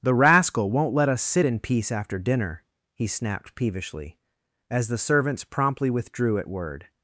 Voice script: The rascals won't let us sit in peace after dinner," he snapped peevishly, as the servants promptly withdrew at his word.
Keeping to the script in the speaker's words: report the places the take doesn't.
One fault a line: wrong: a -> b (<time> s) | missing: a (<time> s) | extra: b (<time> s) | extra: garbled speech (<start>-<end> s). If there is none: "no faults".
wrong: rascals -> rascal (0.1 s)
missing: his (6.5 s)